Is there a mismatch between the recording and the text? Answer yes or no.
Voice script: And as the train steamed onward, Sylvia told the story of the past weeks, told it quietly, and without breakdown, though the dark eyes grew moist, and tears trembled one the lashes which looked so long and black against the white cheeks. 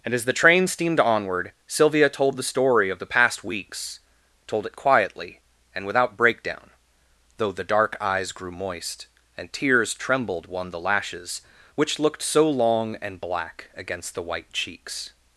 no